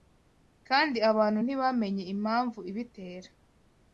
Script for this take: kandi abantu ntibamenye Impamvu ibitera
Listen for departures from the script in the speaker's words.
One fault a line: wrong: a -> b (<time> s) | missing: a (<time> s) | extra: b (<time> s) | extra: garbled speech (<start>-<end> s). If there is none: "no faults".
no faults